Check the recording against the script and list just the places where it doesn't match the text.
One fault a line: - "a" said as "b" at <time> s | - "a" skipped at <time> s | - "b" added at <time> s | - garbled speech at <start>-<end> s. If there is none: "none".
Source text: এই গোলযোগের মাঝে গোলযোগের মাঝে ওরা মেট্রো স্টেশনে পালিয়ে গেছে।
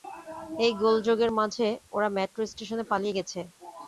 - "গোলযোগের মাঝে" skipped at 1.7 s